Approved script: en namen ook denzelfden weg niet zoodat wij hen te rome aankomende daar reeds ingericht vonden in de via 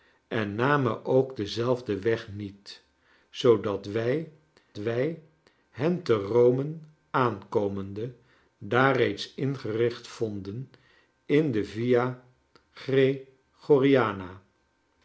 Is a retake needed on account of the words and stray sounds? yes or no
yes